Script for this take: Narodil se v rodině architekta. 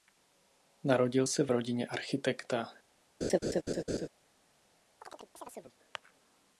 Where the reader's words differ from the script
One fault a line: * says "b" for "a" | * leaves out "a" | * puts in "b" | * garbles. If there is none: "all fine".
all fine